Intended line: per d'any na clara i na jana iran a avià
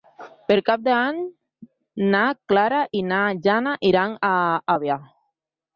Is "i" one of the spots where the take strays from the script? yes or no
no